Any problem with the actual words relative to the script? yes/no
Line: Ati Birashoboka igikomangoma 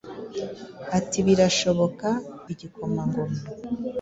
no